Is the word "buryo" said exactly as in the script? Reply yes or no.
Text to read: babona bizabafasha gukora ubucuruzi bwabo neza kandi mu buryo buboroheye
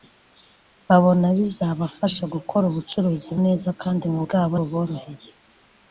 no